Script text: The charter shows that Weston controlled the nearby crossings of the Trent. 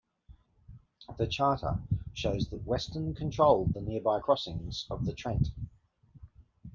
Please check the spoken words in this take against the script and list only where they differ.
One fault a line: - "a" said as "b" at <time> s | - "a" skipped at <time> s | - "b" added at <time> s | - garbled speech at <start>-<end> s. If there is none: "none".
none